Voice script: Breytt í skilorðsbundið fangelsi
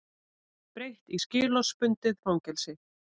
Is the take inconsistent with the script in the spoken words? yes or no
no